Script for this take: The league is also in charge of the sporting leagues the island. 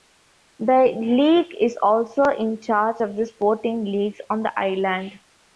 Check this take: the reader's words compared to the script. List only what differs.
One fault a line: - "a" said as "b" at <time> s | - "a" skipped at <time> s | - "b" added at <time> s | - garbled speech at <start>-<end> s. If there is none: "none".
- "on" added at 4.3 s